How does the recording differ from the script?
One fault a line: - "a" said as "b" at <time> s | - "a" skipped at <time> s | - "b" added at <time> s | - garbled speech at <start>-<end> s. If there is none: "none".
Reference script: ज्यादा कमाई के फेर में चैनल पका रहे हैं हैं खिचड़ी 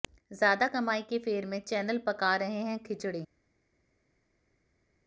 - "हैं" skipped at 2.8 s